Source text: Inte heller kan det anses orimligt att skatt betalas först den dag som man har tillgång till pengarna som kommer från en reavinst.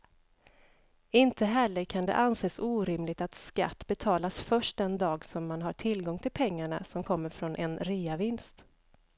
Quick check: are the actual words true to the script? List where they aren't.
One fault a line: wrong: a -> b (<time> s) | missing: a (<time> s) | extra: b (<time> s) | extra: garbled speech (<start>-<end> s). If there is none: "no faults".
no faults